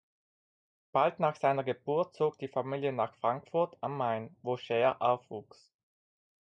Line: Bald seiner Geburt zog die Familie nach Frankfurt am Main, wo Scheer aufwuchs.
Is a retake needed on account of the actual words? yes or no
yes